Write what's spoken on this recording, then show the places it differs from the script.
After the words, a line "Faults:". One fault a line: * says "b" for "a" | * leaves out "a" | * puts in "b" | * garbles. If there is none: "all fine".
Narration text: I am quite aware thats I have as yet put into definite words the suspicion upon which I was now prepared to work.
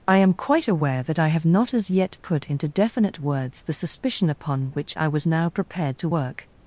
I am quite aware that I have not as yet put into definite words the suspicion upon which I was now prepared to work.
Faults:
* says "that" for "thats"
* puts in "not"